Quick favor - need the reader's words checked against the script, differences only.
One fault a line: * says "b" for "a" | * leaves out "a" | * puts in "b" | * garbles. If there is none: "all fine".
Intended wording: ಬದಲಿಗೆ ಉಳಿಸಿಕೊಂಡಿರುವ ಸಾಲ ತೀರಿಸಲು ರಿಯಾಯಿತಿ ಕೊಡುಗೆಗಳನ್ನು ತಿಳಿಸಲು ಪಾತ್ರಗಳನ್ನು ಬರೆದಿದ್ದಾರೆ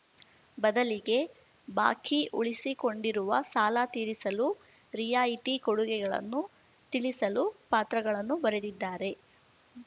* puts in "ಬಾಕಿ"